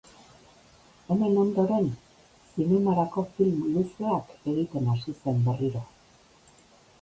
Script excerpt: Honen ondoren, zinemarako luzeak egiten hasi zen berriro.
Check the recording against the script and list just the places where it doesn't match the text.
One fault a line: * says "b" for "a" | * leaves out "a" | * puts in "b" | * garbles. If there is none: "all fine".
* puts in "film"